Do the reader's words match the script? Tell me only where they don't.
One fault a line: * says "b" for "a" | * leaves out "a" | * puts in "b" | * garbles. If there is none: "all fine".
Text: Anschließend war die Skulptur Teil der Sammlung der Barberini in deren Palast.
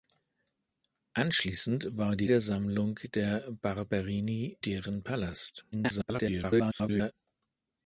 * leaves out "Skulptur Teil"
* leaves out "in"
* garbles